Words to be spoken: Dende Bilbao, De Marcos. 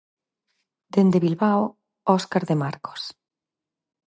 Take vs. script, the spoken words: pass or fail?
fail